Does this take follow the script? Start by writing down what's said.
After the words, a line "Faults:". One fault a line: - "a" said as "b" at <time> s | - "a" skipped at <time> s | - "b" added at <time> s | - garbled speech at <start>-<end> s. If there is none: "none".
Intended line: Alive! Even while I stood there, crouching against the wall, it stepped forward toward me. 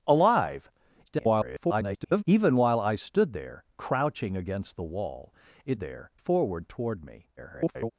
Alive! [garbled] Even while I stood there, crouching against the wall, it there forward toward me. [garbled]
Faults:
- garbled speech at 1.1-2.2 s
- "stepped" said as "there" at 5.8 s
- garbled speech at 7.4-7.9 s